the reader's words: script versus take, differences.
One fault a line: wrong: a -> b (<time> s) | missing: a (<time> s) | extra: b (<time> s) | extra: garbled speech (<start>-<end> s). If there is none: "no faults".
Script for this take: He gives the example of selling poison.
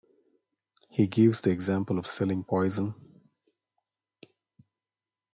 no faults